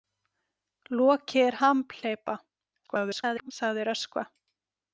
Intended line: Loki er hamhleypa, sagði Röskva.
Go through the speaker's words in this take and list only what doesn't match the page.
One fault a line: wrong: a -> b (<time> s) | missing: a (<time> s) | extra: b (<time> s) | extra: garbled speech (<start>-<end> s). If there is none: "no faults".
extra: garbled speech (2.9-3.5 s)